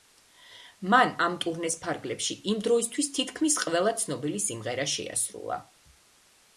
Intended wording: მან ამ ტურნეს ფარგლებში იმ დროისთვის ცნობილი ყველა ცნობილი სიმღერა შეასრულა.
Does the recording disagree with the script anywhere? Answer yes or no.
yes